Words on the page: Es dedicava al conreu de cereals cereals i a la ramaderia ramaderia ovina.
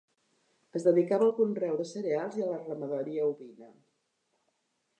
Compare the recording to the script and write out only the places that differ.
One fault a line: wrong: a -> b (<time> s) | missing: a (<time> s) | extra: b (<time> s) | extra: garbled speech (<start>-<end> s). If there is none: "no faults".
missing: cereals (2.4 s)
missing: ramaderia (3.3 s)